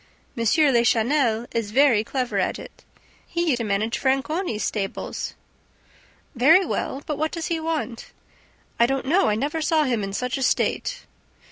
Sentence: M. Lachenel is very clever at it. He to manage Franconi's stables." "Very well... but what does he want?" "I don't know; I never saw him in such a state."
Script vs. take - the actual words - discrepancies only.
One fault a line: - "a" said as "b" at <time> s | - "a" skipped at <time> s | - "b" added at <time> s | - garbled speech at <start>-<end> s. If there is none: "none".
none